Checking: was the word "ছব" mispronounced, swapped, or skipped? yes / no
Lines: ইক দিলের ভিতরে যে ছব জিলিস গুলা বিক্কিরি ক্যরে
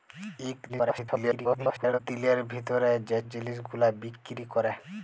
yes